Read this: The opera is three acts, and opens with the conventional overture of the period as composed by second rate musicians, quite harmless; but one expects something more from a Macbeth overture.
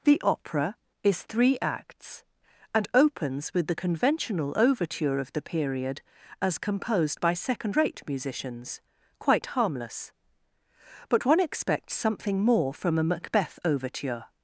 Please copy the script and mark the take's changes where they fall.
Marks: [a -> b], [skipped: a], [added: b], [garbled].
The opera is three acts, and opens with the conventional overture of the period as composed by second rate musicians, quite harmless; but one expects something more from a Macbeth overture.